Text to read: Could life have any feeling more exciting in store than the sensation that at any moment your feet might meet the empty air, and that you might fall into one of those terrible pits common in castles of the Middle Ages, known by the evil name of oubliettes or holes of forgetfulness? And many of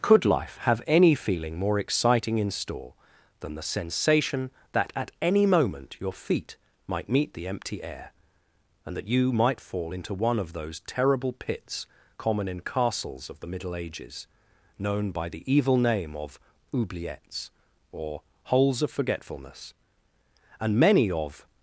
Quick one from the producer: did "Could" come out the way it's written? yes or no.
yes